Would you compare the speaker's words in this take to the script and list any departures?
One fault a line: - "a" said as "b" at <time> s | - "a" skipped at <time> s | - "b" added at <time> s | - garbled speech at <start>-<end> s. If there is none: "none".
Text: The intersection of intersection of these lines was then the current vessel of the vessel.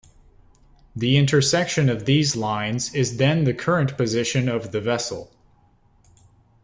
- "intersection of" skipped at 2.0 s
- "was" said as "is" at 2.9 s
- "vessel" said as "position" at 4.0 s